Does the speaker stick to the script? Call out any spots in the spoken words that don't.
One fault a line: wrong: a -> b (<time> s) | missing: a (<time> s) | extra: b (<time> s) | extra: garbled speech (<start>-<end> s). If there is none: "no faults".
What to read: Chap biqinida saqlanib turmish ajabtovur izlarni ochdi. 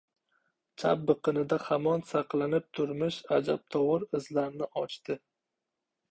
extra: hamon (1.6 s)